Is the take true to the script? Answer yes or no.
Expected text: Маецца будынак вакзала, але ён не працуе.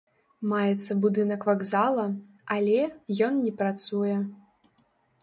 yes